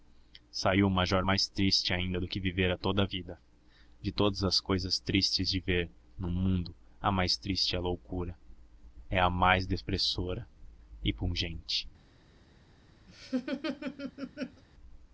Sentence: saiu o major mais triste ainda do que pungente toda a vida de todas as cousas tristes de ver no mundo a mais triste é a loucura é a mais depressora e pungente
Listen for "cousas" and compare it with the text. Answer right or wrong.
right